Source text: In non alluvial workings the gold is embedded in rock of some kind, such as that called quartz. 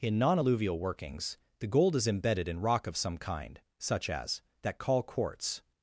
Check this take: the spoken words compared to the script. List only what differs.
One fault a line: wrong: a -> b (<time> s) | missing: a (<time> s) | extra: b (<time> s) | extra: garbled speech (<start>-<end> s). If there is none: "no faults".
wrong: called -> call (4.8 s)